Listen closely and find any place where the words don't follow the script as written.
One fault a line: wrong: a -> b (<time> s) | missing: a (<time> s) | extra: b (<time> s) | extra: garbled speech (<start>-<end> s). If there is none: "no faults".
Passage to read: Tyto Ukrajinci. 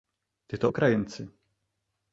no faults